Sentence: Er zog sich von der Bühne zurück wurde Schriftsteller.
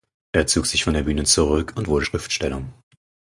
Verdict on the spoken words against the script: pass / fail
fail